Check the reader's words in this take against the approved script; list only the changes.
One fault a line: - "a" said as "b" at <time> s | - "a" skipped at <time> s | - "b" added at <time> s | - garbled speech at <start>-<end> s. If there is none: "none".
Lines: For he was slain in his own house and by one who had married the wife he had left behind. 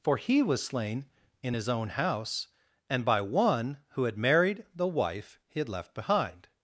none